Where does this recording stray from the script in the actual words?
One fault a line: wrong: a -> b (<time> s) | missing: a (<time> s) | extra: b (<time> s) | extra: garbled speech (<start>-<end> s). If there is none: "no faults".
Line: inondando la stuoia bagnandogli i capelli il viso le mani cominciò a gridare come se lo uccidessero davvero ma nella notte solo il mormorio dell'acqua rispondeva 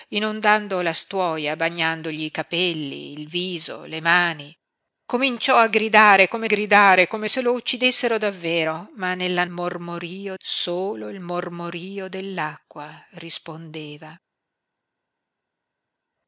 extra: gridare come (6.4 s)
wrong: notte -> mormorio (9.5 s)